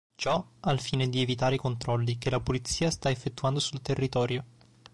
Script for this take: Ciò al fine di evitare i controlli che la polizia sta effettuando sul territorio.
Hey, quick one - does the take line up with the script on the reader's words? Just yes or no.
yes